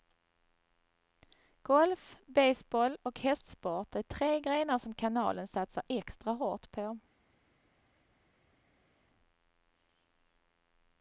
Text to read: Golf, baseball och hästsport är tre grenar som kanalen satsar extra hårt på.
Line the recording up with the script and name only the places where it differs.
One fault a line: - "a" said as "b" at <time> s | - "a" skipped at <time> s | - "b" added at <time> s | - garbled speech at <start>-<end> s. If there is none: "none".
none